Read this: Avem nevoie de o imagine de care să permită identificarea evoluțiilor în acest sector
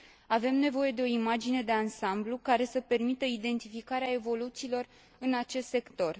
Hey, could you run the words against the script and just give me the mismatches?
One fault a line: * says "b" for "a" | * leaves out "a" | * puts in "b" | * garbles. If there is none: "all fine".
* puts in "ansamblu"